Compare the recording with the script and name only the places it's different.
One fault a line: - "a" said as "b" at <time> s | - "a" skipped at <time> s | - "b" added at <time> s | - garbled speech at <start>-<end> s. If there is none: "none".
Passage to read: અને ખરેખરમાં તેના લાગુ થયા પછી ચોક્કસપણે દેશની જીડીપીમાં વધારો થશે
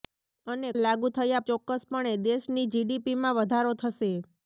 - "ખરેખરમાં તેના" skipped at 0.7 s
- "પછી" skipped at 1.4 s